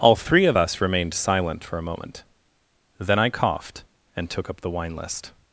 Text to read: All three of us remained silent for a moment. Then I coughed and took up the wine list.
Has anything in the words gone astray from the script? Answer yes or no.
no